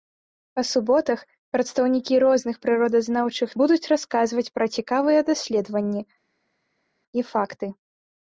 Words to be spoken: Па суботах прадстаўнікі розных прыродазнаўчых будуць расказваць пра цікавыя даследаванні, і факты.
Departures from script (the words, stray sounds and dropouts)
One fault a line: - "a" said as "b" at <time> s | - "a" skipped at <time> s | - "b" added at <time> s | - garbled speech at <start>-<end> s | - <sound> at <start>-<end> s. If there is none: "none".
none